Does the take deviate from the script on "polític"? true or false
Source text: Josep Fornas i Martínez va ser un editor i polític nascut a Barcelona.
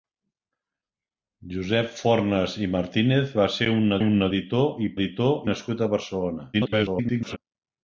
true